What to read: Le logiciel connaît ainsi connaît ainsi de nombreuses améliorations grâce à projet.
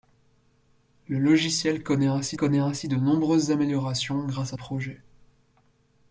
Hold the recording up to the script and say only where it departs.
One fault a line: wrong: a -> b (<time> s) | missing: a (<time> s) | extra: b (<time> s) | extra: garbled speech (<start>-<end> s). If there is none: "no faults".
no faults